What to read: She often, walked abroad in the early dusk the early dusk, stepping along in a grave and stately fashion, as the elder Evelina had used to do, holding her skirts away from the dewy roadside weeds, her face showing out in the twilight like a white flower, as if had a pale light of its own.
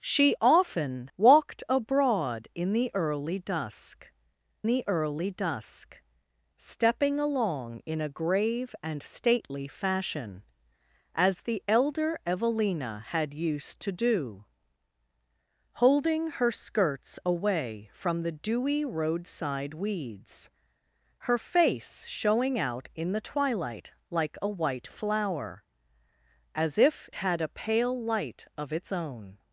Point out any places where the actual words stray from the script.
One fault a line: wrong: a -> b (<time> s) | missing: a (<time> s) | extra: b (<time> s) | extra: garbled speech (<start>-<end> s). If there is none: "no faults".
no faults